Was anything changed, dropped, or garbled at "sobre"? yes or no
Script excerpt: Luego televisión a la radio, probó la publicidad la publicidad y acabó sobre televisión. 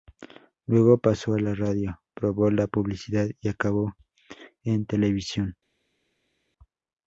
yes